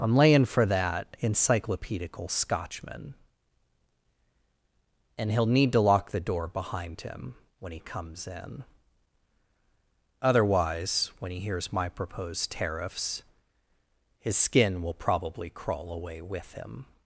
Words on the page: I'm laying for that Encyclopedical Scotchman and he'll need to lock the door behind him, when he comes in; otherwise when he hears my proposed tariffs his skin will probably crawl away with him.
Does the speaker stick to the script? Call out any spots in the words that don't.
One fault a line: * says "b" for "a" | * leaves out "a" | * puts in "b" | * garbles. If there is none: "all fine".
all fine